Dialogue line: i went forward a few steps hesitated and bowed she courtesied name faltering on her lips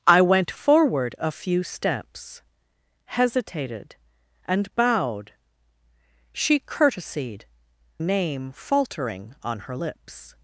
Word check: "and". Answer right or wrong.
right